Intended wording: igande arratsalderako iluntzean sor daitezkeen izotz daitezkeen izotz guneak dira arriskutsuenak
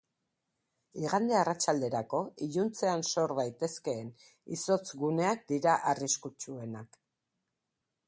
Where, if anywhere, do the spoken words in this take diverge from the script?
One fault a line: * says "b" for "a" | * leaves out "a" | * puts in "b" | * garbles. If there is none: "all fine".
* leaves out "daitezkeen izotz"